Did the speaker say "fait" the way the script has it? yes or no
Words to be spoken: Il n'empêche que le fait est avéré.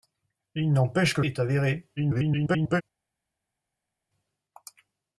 no